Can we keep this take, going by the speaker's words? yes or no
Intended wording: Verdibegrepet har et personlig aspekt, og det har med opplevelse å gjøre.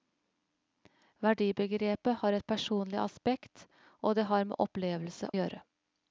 no